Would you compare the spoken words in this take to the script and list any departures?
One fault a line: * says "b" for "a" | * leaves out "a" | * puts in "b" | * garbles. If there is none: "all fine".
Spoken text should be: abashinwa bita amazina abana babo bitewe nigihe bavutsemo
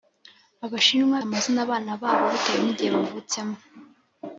* leaves out "bita"